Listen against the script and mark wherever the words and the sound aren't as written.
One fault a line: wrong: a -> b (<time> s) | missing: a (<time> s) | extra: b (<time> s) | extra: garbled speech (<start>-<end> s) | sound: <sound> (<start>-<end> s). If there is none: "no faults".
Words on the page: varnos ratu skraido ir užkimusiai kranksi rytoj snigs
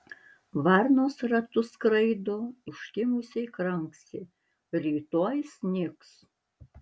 missing: ir (2.4 s)